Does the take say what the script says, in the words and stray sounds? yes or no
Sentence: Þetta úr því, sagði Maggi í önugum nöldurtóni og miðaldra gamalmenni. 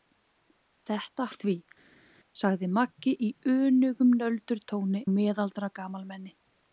yes